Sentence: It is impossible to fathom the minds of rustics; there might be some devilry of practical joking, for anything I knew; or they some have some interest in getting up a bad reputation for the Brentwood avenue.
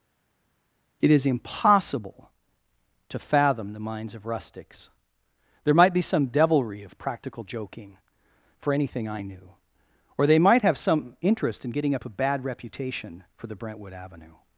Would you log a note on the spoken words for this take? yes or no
yes